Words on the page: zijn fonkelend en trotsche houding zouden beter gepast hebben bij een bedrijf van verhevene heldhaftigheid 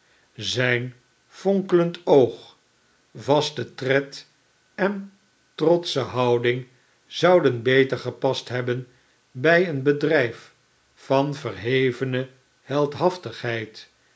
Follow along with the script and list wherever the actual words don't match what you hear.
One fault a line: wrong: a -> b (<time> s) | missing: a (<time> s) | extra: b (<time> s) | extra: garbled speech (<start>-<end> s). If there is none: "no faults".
extra: oog vaste tred (2.0 s)